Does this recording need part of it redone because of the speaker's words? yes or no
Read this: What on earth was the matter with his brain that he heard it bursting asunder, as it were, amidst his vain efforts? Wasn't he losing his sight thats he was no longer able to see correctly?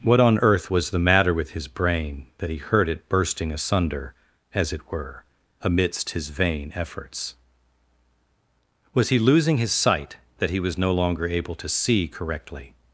yes